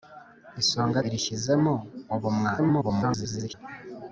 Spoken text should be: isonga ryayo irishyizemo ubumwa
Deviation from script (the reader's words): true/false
true